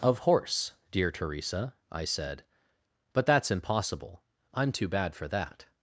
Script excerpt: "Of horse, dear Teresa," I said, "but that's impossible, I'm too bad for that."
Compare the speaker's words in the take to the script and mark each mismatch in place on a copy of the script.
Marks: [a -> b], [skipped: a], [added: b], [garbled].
"Of horse, dear Teresa," I said, "but that's impossible, I'm too bad for that."